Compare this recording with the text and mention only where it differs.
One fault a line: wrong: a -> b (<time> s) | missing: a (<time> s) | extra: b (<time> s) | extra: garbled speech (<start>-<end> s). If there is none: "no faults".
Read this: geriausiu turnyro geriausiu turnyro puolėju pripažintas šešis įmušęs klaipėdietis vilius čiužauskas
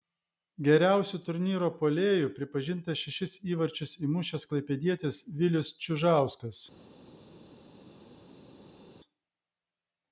missing: geriausiu turnyro (1.7 s)
extra: įvarčius (3.5 s)